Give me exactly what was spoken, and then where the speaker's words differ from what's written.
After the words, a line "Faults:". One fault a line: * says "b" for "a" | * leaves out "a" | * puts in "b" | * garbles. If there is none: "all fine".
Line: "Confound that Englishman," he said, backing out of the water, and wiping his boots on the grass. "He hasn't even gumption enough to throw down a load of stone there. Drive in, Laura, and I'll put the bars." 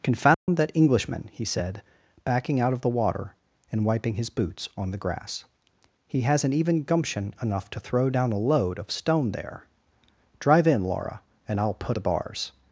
"Confound that Englishman," he said, backing out of the water, and wiping his boots on the grass. "He hasn't even gumption enough to throw down a load of stone there. Drive in, Laura, and I'll put the bars."
Faults:
all fine